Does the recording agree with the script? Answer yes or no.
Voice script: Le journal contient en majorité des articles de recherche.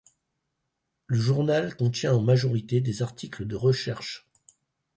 yes